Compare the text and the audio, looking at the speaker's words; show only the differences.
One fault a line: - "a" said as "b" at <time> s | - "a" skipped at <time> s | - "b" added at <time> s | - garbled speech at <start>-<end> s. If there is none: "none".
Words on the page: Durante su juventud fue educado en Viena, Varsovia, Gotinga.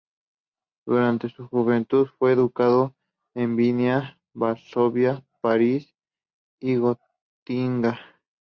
- "París y" added at 5.4 s